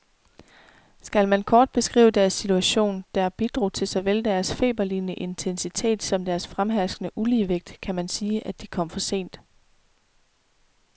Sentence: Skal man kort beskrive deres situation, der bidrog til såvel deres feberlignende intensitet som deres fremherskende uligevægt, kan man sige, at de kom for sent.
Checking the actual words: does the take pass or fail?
pass